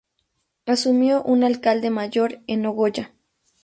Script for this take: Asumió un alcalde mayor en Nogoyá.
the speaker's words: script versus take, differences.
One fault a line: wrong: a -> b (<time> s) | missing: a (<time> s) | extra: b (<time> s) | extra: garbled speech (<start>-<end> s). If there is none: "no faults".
no faults